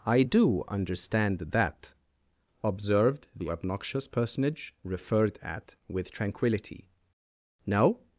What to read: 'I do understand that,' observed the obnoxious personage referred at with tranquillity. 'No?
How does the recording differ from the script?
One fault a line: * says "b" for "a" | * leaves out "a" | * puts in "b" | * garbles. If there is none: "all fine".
all fine